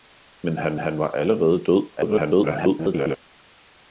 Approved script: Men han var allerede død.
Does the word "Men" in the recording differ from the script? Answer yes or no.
no